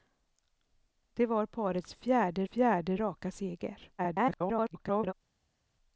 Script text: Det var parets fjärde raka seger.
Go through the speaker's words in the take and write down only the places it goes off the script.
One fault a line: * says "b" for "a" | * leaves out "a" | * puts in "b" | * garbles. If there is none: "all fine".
* puts in "fjärde"
* garbles